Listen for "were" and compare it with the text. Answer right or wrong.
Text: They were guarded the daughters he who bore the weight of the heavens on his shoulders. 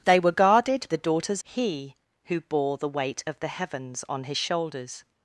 right